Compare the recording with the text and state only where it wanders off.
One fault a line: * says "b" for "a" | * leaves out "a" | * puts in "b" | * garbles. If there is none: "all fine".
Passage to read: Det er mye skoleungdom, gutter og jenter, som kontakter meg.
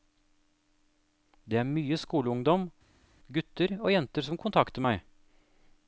all fine